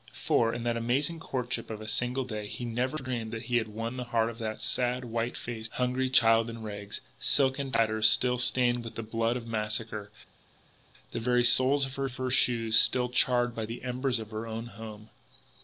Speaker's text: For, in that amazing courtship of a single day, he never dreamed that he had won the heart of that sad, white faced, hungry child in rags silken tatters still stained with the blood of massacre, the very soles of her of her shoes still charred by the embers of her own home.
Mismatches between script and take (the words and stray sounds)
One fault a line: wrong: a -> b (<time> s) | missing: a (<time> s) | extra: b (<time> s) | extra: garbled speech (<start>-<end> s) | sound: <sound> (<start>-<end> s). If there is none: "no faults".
no faults